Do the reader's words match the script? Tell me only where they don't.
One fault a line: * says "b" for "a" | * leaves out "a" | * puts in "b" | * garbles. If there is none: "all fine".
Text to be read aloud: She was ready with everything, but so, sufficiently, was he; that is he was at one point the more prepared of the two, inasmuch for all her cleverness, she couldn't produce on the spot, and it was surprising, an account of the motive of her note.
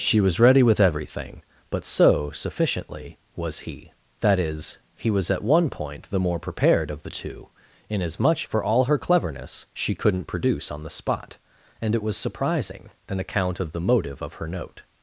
all fine